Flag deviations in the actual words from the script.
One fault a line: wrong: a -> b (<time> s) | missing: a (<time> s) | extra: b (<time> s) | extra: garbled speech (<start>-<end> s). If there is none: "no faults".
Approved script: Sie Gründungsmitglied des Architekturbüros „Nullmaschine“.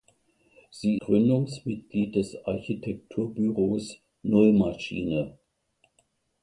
no faults